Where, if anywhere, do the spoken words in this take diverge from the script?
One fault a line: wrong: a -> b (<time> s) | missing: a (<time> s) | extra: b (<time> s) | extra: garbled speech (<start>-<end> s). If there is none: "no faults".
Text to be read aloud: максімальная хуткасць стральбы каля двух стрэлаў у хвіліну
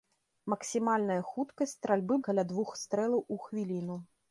no faults